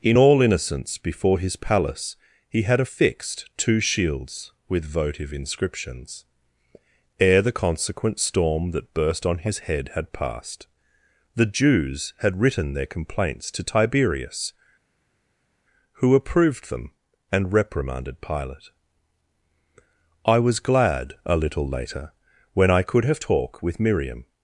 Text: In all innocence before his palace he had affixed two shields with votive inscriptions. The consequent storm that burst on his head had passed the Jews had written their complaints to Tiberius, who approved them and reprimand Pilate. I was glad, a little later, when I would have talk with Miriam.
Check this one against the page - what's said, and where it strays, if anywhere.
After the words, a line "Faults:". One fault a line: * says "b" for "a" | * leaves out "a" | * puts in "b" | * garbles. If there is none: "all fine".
In all innocence before his palace he had affixed two shields with votive inscriptions. Ere the consequent storm that burst on his head had passed the Jews had written their complaints to Tiberius, who approved them and reprimanded Pilate. I was glad, a little later, when I could have talk with Miriam.
Faults:
* puts in "Ere"
* says "reprimanded" for "reprimand"
* says "could" for "would"